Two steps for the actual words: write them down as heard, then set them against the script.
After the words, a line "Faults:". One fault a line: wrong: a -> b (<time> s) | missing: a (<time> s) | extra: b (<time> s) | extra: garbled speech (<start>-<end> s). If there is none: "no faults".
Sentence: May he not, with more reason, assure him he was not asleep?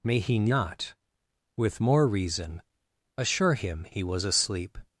May he not, with more reason, assure him he was asleep?
Faults:
missing: not (4.2 s)